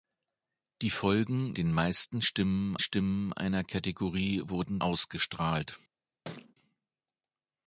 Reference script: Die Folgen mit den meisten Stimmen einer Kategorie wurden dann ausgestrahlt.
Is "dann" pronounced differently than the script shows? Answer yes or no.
yes